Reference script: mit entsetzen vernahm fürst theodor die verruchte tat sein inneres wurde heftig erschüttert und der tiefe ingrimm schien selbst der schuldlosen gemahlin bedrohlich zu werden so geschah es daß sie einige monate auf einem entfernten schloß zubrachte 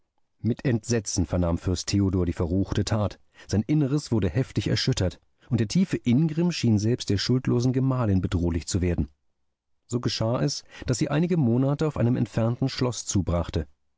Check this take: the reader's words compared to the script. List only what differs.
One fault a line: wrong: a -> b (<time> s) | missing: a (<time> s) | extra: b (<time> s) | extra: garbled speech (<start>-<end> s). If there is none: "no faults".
no faults